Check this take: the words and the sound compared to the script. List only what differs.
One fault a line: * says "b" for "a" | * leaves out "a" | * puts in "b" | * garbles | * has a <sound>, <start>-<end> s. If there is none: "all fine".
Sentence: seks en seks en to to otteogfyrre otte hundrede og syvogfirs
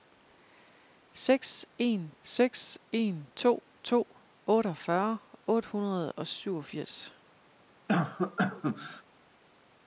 * has a cough, 7.9-9.0 s